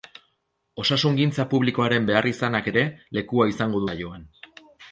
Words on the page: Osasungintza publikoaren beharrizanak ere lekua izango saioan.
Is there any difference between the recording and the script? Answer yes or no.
no